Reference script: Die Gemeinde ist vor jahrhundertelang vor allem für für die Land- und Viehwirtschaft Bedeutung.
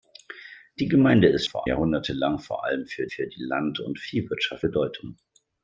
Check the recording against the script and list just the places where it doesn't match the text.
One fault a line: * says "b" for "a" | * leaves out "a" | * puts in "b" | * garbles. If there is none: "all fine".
all fine